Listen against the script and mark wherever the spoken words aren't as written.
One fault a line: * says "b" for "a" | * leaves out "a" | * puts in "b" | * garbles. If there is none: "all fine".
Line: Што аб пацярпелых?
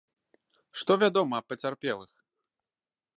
* puts in "вядома"